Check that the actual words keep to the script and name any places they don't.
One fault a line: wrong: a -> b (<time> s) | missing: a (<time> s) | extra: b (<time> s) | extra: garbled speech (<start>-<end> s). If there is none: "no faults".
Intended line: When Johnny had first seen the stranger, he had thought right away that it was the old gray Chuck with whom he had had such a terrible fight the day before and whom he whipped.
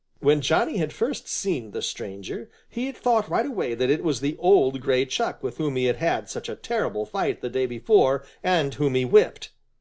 no faults